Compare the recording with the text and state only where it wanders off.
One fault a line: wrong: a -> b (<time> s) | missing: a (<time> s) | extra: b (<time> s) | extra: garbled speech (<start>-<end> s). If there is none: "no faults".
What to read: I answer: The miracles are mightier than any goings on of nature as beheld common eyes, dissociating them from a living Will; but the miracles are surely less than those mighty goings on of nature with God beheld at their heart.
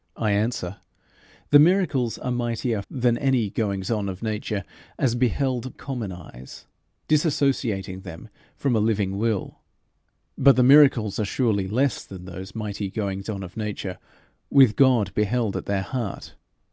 no faults